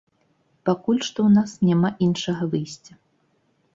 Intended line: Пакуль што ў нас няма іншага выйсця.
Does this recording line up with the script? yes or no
yes